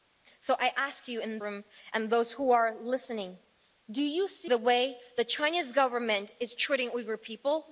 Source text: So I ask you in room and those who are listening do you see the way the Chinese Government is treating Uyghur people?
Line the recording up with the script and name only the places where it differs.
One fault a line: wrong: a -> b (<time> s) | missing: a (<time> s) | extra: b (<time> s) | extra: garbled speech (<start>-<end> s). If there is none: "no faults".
no faults